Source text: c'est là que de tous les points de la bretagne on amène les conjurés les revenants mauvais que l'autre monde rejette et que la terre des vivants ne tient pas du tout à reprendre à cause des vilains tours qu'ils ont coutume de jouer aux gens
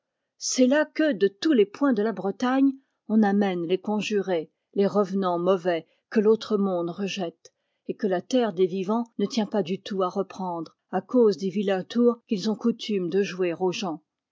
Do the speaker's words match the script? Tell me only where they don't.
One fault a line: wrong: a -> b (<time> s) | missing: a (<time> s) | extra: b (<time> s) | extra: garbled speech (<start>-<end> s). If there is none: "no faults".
no faults